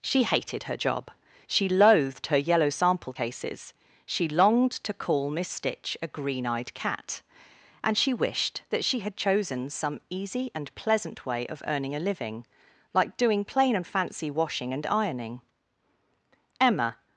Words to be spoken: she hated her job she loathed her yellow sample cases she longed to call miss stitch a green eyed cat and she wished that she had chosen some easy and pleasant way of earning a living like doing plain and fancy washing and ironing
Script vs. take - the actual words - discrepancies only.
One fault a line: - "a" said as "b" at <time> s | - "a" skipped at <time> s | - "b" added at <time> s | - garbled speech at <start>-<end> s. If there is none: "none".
- "emma" added at 16.6 s